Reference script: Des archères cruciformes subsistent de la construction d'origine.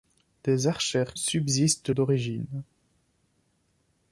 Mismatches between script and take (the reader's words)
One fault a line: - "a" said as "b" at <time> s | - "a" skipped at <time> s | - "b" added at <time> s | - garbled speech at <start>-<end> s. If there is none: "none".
- "cruciformes" skipped at 1.1 s
- "la construction" skipped at 1.9 s